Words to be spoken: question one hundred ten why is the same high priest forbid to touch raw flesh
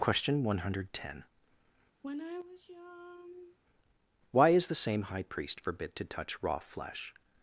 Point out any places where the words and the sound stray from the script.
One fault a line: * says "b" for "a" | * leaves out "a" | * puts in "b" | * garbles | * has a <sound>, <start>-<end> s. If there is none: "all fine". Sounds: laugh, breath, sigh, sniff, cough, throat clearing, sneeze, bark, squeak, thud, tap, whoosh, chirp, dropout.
* has a sigh, 2.0-3.6 s